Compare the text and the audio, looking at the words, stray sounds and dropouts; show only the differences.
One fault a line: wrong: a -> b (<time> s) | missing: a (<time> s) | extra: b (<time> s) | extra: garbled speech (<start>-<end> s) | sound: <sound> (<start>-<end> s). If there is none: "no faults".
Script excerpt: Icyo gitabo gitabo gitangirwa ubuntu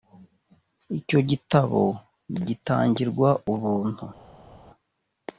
missing: gitabo (1.8 s)